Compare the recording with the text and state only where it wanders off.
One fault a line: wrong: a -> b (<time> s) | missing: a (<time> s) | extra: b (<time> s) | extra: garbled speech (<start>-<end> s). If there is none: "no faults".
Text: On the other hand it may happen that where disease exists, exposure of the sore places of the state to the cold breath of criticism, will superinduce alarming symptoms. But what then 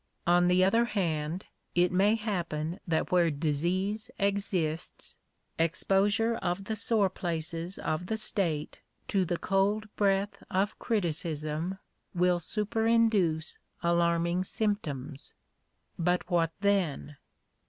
no faults